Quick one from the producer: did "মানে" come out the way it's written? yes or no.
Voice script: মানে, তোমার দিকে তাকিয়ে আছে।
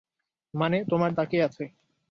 yes